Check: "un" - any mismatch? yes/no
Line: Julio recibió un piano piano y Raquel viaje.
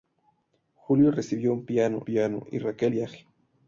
no